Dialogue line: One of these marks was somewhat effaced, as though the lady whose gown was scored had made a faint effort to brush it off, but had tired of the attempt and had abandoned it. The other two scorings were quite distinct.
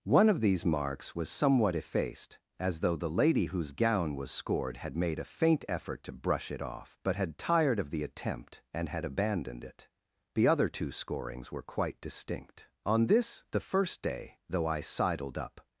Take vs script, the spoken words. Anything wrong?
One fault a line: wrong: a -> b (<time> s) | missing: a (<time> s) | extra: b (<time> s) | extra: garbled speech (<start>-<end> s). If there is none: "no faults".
extra: On this the first day though I sidled up (12.8 s)